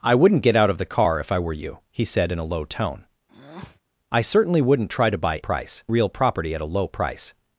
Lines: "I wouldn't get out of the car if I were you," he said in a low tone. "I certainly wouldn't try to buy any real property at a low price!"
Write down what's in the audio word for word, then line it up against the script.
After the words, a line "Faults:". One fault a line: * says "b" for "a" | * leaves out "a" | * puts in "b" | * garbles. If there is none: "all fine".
"I wouldn't get out of the car if I were you," he said in a low tone. "I certainly wouldn't try to buy price real property at a low price!"
Faults:
* says "price" for "any"